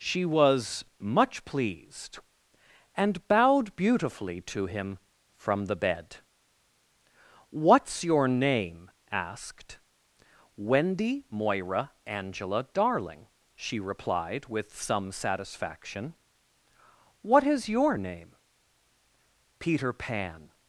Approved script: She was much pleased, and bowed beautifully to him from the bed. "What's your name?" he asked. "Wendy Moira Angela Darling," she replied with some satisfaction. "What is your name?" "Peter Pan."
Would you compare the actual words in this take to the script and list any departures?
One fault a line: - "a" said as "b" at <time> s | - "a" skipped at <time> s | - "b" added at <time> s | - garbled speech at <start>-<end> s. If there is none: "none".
- "he" skipped at 8.9 s